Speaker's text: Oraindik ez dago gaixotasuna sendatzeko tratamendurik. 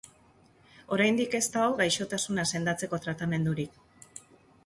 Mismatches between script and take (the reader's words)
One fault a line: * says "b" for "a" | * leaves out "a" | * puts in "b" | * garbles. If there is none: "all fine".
all fine